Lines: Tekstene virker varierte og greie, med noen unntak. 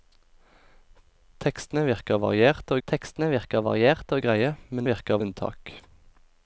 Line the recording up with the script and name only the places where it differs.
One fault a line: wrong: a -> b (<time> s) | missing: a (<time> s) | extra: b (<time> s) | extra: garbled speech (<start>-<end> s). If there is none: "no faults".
extra: tekstene virker varierte (2.9 s)
wrong: noen -> virker (4.9 s)